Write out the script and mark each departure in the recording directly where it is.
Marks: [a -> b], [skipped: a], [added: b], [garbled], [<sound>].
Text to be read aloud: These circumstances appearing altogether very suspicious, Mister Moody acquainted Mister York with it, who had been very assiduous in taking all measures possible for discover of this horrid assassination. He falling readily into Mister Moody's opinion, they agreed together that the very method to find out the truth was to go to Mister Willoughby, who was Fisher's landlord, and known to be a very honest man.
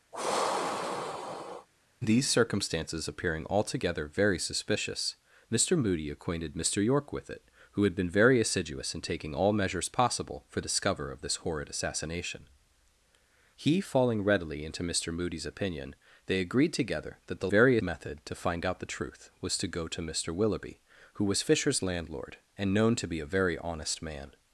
[sigh] These circumstances appearing altogether very suspicious, Mister Moody acquainted Mister York with it, who had been very assiduous in taking all measures possible for discover of this horrid assassination. He falling readily into Mister Moody's opinion, they agreed together that the very method to find out the truth was to go to Mister Willoughby, who was Fisher's landlord, and known to be a very honest man.